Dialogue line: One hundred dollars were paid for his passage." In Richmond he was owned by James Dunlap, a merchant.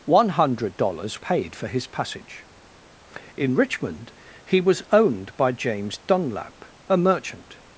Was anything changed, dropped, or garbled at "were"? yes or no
yes